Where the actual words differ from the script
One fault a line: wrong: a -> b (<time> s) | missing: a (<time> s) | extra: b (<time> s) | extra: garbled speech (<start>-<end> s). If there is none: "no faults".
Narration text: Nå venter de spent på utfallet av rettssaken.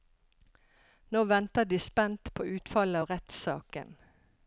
no faults